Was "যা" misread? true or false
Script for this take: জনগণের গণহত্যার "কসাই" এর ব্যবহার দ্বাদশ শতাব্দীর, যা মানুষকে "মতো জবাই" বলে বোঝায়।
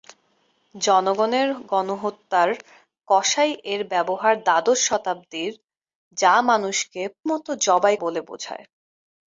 false